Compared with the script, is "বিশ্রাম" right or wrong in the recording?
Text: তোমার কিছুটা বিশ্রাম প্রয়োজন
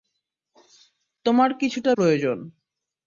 wrong